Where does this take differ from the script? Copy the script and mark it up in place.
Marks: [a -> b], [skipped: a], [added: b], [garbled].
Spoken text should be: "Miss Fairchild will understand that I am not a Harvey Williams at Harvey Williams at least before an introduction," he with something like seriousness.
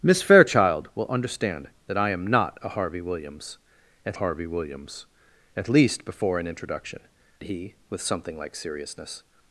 "Miss Fairchild will understand that I am not a Harvey Williams at Harvey Williams at least before an introduction," he with something like seriousness.